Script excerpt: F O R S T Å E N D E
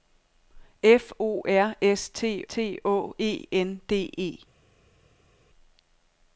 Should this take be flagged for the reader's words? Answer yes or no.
yes